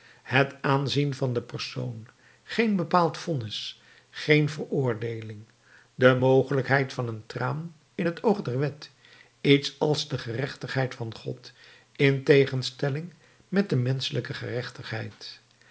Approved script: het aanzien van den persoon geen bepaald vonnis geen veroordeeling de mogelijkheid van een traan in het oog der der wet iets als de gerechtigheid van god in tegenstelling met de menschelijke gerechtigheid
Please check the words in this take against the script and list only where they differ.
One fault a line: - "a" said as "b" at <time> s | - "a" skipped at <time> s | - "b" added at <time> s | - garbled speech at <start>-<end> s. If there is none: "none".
- "der" skipped at 8.6 s